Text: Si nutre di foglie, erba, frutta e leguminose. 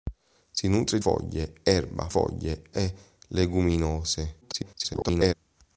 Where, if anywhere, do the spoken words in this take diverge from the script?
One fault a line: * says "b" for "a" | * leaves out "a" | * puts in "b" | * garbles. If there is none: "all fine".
* leaves out "di"
* says "foglie" for "frutta"
* garbles